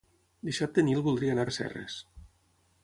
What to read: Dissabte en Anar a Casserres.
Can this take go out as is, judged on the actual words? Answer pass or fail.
fail